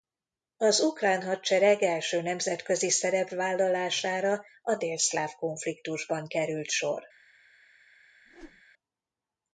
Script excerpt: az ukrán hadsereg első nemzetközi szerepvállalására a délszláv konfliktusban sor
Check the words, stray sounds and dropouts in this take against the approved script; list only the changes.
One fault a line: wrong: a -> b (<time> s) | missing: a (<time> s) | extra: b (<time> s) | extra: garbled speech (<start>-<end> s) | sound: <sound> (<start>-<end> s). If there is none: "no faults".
extra: került (6.3 s)
sound: whoosh (8.3-8.6 s)